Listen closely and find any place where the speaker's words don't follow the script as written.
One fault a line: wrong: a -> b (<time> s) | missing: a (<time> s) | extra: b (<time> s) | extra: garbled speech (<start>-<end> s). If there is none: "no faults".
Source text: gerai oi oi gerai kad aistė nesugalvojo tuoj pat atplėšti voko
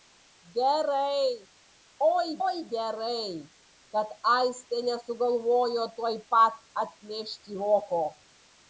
no faults